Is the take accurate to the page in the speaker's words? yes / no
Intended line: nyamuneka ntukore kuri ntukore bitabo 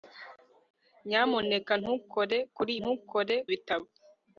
yes